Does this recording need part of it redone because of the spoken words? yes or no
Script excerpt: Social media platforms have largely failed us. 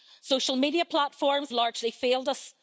yes